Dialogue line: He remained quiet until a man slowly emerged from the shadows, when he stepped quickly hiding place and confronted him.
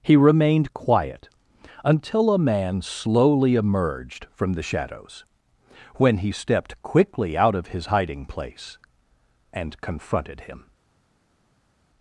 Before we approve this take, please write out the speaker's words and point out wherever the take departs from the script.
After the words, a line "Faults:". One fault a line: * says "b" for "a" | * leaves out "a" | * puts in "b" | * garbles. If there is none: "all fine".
He remained quiet until a man slowly emerged from the shadows, when he stepped quickly out of his hiding place and confronted him.
Faults:
* puts in "out of his"